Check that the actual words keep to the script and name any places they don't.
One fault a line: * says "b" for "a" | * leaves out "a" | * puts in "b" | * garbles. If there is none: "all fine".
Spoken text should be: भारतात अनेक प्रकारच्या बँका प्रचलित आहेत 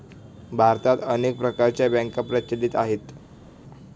all fine